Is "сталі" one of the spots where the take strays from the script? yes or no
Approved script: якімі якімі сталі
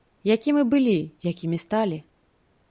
no